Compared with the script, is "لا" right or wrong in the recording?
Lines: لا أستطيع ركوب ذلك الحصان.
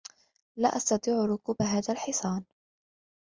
right